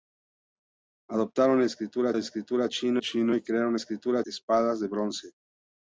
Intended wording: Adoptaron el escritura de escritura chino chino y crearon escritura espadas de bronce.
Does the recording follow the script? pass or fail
pass